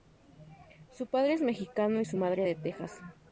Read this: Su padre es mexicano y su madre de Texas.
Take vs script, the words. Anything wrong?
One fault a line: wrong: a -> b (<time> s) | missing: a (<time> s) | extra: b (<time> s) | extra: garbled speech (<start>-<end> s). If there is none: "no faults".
no faults